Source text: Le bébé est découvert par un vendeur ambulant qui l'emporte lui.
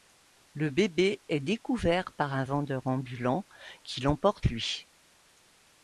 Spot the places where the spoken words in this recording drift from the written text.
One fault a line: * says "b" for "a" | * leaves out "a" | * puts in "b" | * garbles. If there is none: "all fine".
all fine